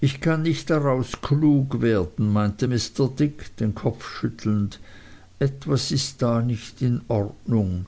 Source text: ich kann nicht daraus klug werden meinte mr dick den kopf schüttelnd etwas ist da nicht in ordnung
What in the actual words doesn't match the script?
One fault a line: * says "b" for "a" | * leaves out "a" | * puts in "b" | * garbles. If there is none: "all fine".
all fine